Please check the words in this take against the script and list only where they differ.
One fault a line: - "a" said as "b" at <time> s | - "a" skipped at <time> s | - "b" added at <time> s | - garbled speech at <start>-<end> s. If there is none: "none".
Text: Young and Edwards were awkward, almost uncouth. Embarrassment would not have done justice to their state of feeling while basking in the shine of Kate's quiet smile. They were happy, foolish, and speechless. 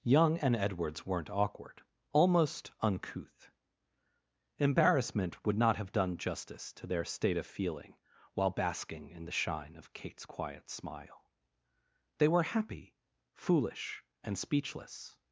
- "were" said as "weren't" at 1.1 s